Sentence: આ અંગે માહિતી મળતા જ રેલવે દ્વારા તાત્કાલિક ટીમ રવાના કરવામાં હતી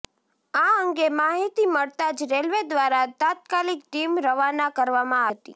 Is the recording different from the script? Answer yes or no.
no